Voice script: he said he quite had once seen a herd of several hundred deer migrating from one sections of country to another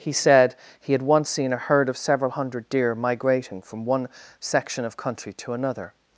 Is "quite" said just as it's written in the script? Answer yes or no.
no